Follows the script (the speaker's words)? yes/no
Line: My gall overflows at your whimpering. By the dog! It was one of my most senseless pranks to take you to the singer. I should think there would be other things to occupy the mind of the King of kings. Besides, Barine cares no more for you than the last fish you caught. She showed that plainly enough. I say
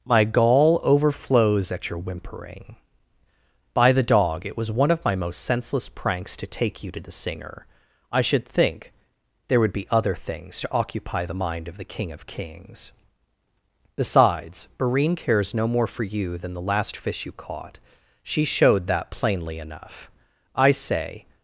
yes